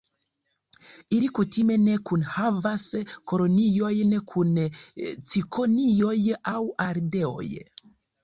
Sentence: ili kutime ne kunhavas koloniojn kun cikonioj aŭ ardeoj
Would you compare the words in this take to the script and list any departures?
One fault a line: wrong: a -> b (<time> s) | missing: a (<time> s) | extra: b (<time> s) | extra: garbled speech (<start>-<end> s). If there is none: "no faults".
no faults